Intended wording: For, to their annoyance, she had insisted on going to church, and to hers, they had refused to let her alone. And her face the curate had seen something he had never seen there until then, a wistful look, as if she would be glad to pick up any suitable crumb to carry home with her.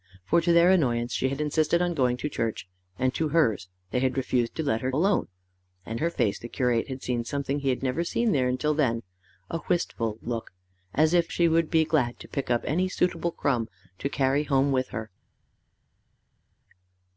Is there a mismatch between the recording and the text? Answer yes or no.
no